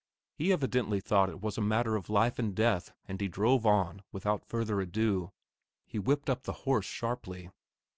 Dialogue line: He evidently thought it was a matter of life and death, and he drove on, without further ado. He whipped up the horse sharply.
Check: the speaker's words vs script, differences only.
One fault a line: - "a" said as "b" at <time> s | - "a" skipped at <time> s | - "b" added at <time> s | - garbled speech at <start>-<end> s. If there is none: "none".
none